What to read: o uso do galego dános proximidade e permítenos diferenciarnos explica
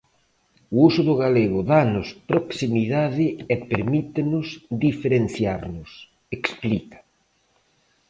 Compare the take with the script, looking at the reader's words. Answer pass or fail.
pass